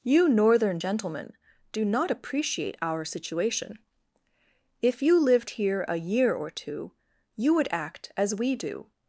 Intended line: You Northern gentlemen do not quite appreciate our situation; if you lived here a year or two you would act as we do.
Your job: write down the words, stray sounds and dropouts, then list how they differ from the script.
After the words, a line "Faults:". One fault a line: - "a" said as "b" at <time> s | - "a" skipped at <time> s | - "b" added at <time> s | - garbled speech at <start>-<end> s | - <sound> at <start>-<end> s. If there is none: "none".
You Northern gentlemen do not appreciate our situation; if you lived here a year or two you would act as we do.
Faults:
- "quite" skipped at 2.1 s